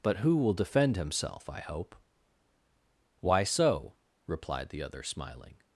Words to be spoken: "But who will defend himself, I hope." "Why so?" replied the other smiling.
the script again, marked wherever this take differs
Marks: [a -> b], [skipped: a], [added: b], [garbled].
"But who will defend himself, I hope." "Why so?" replied the other smiling.